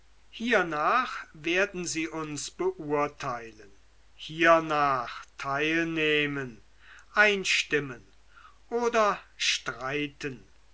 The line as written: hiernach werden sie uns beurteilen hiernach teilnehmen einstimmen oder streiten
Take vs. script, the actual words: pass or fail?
pass